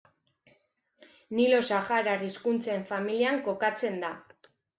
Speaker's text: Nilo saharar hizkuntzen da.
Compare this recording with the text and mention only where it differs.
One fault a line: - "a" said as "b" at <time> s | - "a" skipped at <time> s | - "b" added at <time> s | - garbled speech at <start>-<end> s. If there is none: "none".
- "familian kokatzen" added at 2.9 s